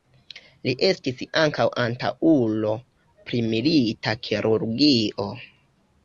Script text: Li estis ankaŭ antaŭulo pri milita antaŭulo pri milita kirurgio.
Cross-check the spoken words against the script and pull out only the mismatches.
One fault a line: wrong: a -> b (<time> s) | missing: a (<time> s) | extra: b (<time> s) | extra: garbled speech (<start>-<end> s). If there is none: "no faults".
missing: antaŭulo pri milita (4.2 s)